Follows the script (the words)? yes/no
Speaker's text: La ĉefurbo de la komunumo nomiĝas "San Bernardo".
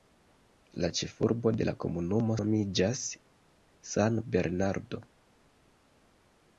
yes